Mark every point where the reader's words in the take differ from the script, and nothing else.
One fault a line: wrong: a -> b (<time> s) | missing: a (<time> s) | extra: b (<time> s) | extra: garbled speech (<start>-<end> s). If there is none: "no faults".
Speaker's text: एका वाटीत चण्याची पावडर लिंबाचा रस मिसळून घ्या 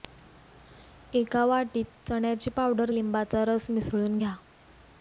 no faults